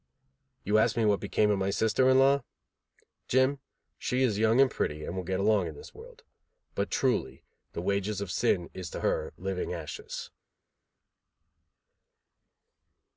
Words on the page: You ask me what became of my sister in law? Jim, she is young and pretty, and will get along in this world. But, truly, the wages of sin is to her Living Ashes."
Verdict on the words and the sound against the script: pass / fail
pass